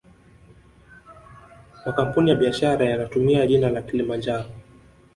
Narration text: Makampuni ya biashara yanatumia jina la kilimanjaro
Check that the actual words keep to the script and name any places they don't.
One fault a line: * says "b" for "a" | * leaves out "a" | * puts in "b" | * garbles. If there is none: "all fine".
all fine